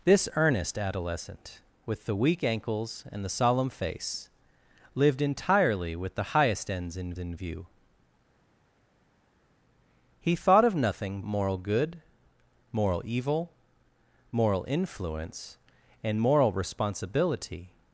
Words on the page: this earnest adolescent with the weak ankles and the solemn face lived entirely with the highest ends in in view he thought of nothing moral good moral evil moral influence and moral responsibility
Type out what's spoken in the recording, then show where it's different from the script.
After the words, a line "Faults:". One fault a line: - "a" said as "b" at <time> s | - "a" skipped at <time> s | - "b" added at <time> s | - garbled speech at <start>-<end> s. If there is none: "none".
this earnest adolescent with the weak ankles and the solemn face lived entirely with the highest ends in in view he thought of nothing moral good moral evil moral influence and moral responsibility
Faults:
none